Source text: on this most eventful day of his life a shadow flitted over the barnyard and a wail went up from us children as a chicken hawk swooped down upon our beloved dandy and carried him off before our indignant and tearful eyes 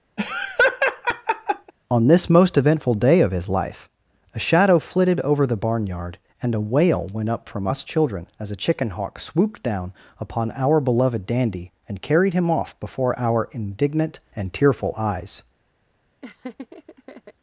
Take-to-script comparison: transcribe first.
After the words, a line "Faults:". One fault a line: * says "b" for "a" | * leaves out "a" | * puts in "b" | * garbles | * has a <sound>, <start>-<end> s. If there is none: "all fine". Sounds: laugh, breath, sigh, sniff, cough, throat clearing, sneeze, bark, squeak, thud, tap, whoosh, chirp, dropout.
on this most eventful day of his life a shadow flitted over the barnyard and a wail went up from us children as a chicken hawk swooped down upon our beloved dandy and carried him off before our indignant and tearful eyes
Faults:
* has a laugh, 0.2-1.7 s
* has a laugh, 16.2-17.3 s